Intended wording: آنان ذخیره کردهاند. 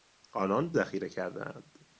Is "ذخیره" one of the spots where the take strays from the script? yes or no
no